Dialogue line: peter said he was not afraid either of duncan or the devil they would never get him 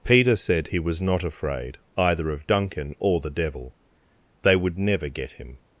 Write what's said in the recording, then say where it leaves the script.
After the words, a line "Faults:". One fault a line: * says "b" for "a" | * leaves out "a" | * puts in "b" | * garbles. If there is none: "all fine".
peter said he was not afraid either of duncan or the devil they would never get him
Faults:
all fine